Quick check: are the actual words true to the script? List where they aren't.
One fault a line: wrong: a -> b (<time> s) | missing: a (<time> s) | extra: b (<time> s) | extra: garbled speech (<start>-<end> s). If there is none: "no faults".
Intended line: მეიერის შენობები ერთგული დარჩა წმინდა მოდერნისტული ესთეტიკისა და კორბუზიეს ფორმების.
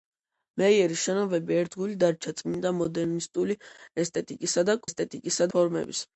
wrong: კორბუზიეს -> ესთეტიკისა (4.9 s)